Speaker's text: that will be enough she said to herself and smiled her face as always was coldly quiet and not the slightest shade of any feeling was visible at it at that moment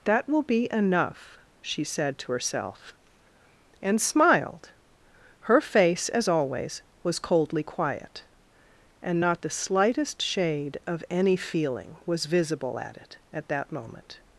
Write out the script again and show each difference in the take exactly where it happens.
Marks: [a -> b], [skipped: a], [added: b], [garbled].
that will be enough she said to herself and smiled her face as always was coldly quiet and not the slightest shade of any feeling was visible at it at that moment